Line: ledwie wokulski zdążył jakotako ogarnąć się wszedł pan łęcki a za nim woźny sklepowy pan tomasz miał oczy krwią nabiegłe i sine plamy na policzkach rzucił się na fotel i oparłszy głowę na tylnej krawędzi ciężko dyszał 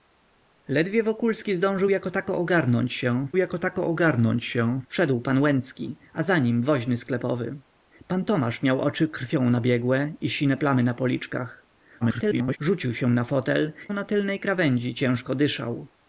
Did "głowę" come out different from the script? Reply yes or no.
yes